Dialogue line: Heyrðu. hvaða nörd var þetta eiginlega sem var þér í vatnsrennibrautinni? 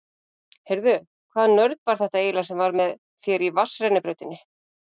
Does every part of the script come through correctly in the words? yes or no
no